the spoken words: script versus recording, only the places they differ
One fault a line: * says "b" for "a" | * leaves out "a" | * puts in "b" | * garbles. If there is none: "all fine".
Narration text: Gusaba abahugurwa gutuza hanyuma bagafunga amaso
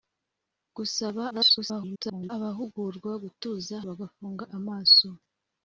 * garbles
* leaves out "hanyuma"